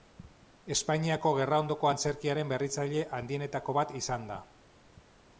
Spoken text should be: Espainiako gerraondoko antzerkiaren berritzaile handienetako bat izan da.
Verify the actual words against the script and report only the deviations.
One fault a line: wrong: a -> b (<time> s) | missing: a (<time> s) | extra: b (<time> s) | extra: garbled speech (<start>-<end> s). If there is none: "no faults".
no faults